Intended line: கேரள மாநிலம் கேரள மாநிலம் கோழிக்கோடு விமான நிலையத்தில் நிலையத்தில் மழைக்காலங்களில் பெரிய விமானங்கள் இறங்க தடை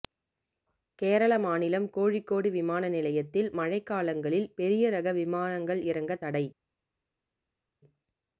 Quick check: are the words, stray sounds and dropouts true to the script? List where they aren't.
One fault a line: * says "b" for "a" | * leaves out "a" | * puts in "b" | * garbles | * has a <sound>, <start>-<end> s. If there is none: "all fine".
* leaves out "கேரள மாநிலம்"
* leaves out "நிலையத்தில்"
* puts in "ரக"